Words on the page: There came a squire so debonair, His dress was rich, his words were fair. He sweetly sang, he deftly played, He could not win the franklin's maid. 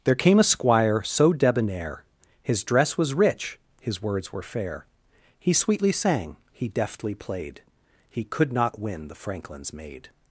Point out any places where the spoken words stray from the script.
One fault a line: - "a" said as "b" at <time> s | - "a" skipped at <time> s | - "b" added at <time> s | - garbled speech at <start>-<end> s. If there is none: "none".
none